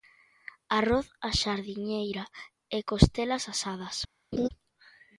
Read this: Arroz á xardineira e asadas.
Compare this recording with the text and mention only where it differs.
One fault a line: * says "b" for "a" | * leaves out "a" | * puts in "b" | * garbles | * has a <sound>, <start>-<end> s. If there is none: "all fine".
* puts in "costelas"
* has a laugh, 4.3-4.5 s